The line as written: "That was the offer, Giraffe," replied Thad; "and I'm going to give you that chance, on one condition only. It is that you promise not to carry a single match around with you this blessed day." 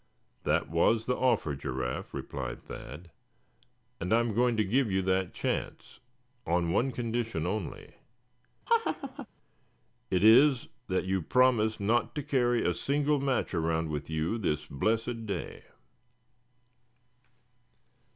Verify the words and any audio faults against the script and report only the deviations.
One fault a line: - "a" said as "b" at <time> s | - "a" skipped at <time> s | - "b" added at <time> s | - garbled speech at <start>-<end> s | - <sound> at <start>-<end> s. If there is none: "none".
- laugh at 8.7-9.3 s